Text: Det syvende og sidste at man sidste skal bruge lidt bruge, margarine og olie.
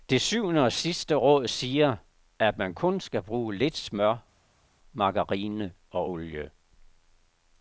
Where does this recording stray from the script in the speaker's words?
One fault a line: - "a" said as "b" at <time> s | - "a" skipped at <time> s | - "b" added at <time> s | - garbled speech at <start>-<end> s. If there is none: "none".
- "råd siger" added at 1.1 s
- "sidste" said as "kun" at 2.7 s
- "bruge" said as "smør" at 3.8 s